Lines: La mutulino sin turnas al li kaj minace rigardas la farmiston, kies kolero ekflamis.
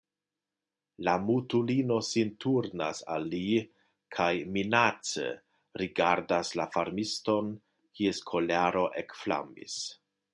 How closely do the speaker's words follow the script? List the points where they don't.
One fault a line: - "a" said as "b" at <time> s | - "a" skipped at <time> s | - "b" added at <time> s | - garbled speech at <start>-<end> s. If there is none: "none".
none